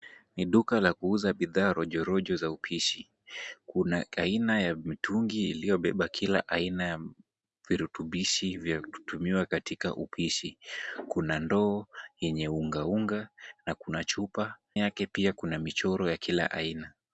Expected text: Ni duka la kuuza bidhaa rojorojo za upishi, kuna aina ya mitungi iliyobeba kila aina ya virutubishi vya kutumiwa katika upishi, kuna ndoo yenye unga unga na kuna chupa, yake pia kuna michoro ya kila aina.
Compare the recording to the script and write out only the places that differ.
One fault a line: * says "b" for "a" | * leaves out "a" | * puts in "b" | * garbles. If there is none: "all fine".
all fine